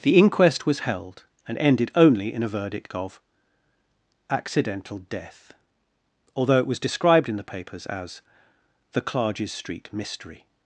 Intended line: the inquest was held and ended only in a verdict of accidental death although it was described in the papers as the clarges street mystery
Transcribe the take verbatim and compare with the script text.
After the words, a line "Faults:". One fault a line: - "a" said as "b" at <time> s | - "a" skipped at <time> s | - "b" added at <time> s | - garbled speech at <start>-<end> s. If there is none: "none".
the inquest was held and ended only in a verdict of accidental death although it was described in the papers as the clarges street mystery
Faults:
none